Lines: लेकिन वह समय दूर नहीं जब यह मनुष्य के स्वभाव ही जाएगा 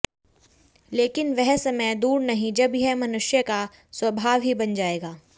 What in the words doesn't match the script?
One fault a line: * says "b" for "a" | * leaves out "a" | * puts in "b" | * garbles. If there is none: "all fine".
* says "का" for "के"
* puts in "बन"